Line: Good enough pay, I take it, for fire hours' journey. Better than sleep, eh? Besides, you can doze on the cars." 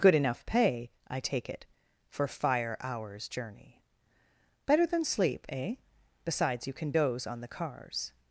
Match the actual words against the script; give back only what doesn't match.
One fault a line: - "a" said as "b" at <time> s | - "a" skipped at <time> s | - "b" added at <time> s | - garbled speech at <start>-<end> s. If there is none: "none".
none